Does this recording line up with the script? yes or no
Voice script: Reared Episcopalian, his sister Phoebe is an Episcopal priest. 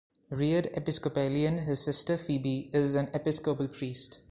yes